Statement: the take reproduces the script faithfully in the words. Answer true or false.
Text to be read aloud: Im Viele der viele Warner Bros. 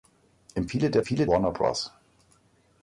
true